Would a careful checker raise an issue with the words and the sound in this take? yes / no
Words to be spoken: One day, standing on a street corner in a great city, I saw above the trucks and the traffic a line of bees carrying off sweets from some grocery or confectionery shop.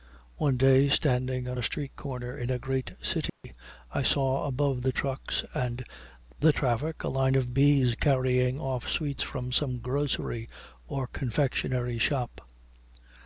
yes